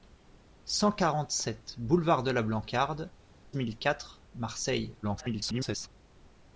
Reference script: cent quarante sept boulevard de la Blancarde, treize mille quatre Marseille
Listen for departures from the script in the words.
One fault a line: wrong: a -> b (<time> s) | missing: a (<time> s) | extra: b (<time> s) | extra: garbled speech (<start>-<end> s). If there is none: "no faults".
missing: treize (3.1 s)
extra: garbled speech (5.0-5.9 s)